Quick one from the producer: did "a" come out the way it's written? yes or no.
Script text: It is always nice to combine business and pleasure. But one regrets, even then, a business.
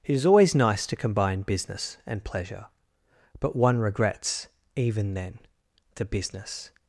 no